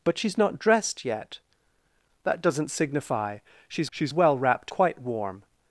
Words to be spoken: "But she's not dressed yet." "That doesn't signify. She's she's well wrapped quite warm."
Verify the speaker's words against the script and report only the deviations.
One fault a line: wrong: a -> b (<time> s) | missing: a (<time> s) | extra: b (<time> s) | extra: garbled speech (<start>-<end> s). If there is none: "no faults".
no faults